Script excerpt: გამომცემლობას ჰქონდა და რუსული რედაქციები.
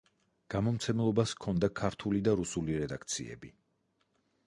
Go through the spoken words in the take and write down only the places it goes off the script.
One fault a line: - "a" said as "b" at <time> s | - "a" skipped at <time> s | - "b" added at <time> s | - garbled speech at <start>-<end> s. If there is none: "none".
- "ქართული" added at 1.8 s